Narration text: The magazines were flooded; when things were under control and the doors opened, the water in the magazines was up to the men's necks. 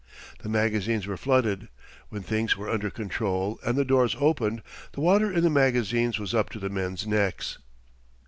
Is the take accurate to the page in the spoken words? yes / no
yes